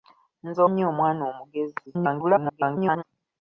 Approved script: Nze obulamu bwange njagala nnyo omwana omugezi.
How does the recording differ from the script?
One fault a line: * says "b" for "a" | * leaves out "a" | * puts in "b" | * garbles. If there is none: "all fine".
* leaves out "obulamu bwange njagala"
* garbles